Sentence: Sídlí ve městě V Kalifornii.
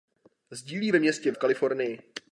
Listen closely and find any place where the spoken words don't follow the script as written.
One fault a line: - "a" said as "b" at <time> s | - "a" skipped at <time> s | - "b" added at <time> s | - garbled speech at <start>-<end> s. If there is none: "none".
none